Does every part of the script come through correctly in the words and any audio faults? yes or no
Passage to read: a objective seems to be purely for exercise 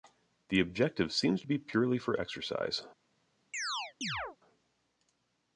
no